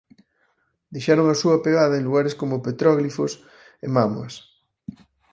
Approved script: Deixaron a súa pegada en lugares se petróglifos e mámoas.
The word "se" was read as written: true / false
false